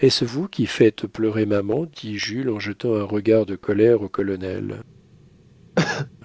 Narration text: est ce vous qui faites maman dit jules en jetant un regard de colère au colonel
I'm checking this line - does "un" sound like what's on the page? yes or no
yes